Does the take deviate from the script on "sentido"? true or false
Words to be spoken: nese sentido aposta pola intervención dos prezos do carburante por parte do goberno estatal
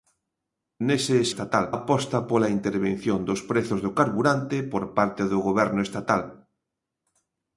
true